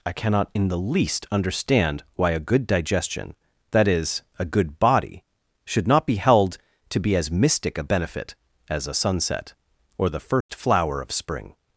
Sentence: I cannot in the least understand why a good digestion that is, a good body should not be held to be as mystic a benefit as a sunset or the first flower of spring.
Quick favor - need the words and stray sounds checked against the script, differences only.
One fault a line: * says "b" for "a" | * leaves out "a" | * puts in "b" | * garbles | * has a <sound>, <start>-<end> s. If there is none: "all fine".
* has a dropout, 10.4-10.5 s